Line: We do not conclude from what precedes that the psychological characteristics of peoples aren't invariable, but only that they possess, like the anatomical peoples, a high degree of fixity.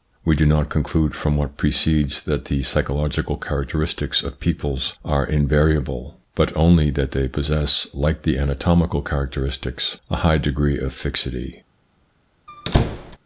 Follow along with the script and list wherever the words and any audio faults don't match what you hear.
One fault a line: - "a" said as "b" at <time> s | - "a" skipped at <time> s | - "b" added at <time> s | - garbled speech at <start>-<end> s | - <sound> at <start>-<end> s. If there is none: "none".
- "aren't" said as "are" at 5.0 s
- "peoples" said as "characteristics" at 9.0 s
- squeak at 12.5-13.2 s